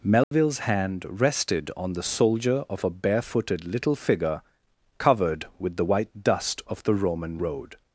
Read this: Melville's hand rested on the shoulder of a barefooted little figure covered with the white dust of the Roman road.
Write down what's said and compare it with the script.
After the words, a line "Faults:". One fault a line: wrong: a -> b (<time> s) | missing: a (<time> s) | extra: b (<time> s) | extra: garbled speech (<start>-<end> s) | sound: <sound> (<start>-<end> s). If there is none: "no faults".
Melville's hand rested on the soldier of a barefooted little figure covered with the white dust of the Roman road.
Faults:
sound: dropout (0.2-0.3 s)
wrong: shoulder -> soldier (2.0 s)